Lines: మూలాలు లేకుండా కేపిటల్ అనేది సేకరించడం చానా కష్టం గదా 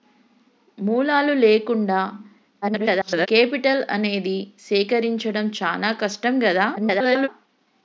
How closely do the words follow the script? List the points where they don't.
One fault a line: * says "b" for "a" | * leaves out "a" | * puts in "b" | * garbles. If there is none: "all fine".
* garbles
* garbles